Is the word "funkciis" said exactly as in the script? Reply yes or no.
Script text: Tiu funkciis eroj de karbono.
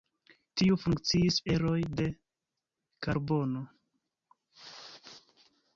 yes